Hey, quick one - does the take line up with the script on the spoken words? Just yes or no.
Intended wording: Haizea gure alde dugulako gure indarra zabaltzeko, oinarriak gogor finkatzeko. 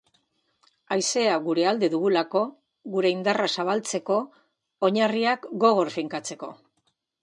yes